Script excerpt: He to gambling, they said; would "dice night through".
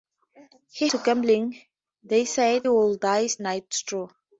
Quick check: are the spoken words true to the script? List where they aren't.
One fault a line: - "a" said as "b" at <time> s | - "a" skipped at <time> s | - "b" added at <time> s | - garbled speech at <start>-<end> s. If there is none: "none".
none